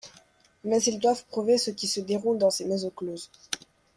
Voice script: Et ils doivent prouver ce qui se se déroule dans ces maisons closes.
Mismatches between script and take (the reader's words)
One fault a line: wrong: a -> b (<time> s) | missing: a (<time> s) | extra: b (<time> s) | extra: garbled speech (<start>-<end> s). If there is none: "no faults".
wrong: Et -> Mais (0.6 s)
missing: se (2.0 s)